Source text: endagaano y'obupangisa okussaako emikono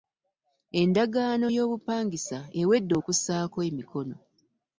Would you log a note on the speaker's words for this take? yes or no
yes